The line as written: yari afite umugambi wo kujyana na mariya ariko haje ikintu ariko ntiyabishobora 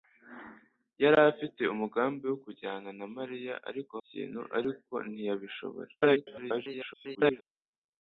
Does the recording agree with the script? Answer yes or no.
no